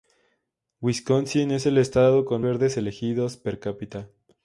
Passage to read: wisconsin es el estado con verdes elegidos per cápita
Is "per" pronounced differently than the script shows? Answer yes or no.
no